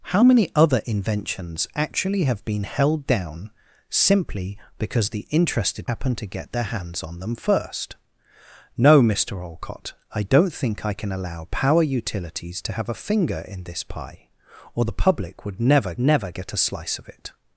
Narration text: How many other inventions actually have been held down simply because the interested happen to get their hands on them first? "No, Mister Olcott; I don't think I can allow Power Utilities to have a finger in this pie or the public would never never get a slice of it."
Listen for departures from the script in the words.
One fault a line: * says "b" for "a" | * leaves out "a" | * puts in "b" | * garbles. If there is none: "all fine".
all fine